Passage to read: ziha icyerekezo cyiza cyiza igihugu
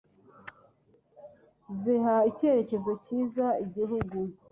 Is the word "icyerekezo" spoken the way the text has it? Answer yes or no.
yes